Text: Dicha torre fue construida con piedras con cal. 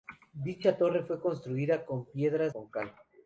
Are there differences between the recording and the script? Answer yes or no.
no